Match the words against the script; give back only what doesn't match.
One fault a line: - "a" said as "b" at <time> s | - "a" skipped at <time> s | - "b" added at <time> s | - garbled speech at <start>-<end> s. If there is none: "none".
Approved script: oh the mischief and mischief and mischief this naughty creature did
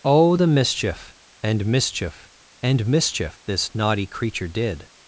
none